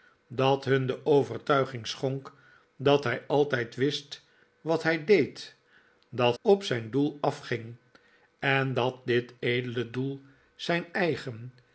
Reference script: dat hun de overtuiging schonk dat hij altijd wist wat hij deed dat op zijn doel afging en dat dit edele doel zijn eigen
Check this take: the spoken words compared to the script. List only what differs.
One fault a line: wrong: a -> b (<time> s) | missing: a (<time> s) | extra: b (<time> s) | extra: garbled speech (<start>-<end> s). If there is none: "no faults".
no faults